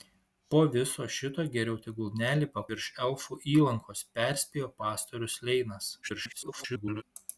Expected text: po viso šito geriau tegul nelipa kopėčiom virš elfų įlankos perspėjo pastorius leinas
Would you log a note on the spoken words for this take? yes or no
yes